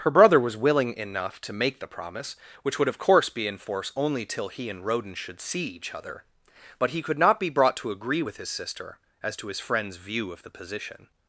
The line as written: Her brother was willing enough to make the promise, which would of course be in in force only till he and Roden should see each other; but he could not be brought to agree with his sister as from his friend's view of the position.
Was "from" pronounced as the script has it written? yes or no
no